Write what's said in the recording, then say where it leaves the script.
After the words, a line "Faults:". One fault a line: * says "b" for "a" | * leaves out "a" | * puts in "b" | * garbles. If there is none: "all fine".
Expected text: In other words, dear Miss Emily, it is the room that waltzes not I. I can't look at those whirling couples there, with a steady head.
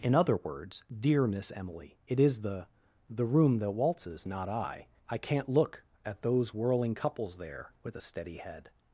In other words, dear Miss Emily, it is the the room that waltzes not I. I can't look at those whirling couples there, with a steady head.
Faults:
* puts in "the"